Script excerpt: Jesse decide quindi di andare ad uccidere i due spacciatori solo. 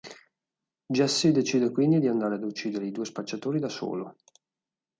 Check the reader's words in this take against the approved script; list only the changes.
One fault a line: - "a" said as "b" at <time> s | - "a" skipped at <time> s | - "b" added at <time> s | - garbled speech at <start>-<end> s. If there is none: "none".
- "da" added at 3.6 s